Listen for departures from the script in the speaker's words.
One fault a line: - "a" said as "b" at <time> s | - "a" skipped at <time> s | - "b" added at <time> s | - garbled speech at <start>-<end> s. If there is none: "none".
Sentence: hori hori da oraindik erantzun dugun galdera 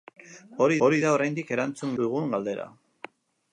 none